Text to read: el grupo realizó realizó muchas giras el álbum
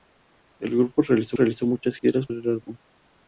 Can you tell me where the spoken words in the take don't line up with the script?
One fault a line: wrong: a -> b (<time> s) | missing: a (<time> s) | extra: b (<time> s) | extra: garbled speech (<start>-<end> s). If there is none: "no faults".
no faults